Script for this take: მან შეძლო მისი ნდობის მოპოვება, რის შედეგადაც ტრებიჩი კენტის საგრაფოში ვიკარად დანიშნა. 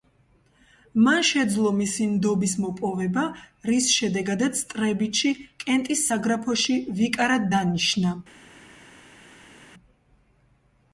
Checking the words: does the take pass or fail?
pass